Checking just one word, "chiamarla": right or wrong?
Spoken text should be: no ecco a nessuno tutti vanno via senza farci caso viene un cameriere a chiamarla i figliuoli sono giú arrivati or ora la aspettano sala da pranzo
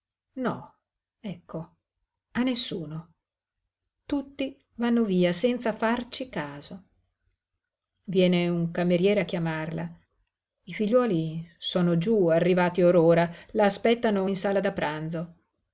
right